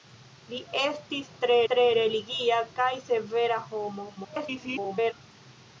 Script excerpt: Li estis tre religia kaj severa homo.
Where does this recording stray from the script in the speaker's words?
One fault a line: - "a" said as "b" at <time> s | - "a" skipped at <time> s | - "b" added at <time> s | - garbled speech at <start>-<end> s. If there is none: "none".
- "tre" added at 1.7 s
- garbled speech at 4.2-5.1 s